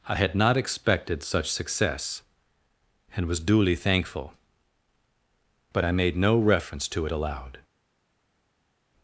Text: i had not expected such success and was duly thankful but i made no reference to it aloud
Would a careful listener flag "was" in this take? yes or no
no